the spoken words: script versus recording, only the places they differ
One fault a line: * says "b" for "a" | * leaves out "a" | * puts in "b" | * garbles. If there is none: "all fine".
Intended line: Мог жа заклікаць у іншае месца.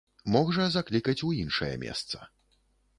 all fine